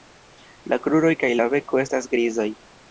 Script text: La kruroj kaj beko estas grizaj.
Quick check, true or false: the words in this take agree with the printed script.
false